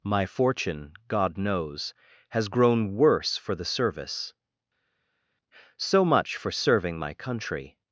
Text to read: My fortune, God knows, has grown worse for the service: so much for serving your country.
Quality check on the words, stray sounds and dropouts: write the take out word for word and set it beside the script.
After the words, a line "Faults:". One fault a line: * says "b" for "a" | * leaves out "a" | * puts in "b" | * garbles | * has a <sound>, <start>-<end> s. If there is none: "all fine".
My fortune, God knows, has grown worse for the service: so much for serving my country.
Faults:
* says "my" for "your"